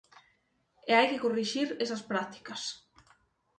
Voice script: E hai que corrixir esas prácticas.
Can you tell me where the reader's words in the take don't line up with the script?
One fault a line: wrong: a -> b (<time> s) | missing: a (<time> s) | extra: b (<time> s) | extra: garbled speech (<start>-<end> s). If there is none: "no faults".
no faults